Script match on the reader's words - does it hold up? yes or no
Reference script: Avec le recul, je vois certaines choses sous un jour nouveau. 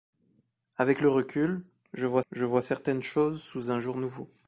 no